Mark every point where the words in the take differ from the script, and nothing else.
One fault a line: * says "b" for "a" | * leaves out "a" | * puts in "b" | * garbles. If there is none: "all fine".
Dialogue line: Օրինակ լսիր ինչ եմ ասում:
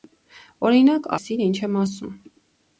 all fine